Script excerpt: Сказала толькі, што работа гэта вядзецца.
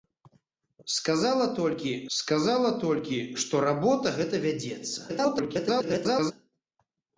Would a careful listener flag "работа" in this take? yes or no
no